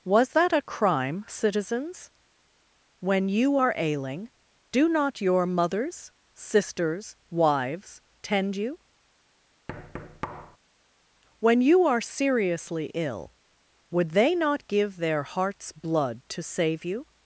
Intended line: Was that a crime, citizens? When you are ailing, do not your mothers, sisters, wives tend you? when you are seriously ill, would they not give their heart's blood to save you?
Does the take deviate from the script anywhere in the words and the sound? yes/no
yes